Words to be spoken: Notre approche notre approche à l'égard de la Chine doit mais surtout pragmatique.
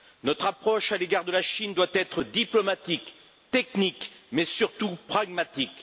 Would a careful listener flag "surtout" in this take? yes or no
no